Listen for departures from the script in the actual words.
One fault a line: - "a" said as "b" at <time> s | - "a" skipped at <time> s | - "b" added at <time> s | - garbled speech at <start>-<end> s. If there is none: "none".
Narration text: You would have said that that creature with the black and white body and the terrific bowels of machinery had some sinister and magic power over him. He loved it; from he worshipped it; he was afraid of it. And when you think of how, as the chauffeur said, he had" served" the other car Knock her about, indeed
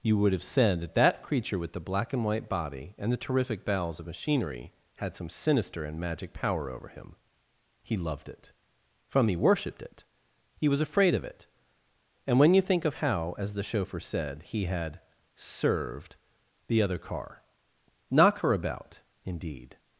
none